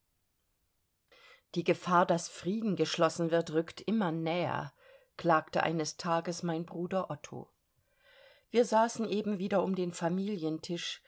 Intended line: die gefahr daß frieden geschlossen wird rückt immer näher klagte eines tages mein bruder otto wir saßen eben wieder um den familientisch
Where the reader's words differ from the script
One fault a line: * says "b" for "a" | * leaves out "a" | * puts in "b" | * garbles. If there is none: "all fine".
all fine